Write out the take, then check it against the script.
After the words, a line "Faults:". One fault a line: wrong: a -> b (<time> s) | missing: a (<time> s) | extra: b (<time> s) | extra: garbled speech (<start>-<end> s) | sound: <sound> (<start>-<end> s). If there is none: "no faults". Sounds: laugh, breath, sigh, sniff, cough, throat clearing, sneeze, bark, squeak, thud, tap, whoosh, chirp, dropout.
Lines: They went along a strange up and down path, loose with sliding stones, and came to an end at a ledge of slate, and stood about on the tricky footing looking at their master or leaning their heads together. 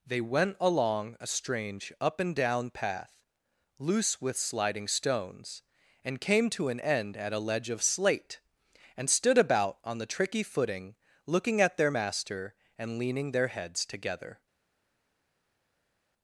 They went along a strange up and down path, loose with sliding stones, and came to an end at a ledge of slate, and stood about on the tricky footing looking at their master and leaning their heads together.
Faults:
wrong: or -> and (12.8 s)